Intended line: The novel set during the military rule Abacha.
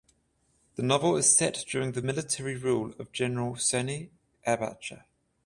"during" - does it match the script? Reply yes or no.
yes